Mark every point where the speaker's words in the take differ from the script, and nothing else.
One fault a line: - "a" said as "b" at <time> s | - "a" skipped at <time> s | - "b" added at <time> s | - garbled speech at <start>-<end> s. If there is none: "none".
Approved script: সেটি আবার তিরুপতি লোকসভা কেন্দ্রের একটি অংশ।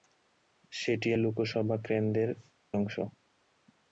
- "আবার তিরুপতি" skipped at 1.1 s
- "একটি" skipped at 2.3 s